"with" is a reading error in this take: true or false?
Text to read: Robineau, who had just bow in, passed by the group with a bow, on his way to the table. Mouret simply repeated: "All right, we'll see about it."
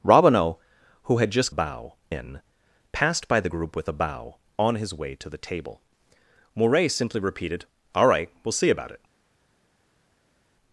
false